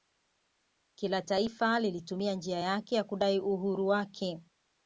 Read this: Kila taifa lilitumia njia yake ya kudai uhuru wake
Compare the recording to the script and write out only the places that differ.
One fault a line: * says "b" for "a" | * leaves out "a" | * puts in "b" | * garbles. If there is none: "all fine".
all fine